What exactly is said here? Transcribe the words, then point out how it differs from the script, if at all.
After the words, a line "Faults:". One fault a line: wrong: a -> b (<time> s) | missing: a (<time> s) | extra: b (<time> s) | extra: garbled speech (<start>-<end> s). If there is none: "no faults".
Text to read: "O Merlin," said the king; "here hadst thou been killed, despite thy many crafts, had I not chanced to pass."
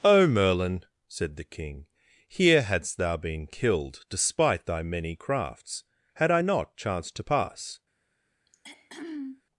"O Merlin," said the king; "here hadst thou been killed, despite thy many crafts, had I not chanced to pass."
Faults:
no faults